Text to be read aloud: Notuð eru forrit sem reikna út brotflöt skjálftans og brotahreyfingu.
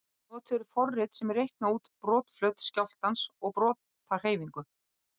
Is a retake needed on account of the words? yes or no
no